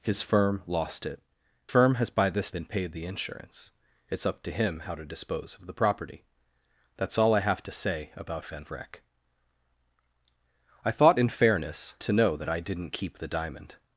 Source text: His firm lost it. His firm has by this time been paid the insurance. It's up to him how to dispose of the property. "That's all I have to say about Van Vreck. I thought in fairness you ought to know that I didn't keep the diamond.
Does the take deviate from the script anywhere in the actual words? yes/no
yes